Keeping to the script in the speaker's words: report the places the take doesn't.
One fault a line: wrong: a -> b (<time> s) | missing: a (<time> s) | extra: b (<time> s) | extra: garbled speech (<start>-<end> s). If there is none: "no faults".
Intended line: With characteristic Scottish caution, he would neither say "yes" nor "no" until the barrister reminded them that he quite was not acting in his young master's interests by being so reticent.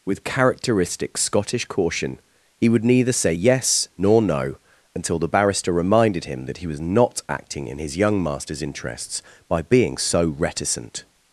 wrong: them -> him (6.2 s)
missing: quite (6.7 s)